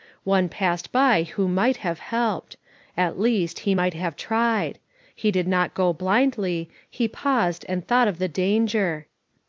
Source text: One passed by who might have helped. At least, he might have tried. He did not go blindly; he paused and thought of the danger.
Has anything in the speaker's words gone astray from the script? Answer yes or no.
no